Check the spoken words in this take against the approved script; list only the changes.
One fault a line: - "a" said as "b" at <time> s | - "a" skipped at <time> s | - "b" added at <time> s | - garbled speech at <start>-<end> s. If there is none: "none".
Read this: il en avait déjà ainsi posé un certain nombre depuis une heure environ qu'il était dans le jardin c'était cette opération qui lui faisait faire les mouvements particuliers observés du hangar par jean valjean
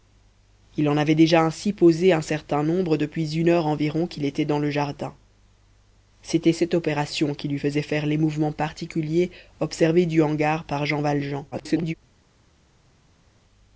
- garbled speech at 11.5-11.9 s